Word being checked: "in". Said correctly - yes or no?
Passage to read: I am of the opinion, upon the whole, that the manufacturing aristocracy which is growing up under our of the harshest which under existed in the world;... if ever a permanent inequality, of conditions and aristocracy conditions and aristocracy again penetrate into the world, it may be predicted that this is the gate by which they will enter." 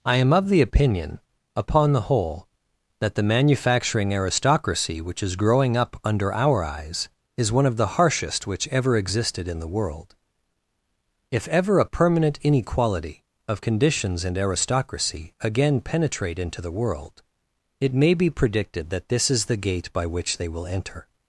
yes